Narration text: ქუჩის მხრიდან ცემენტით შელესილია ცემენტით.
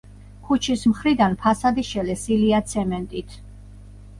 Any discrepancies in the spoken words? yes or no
yes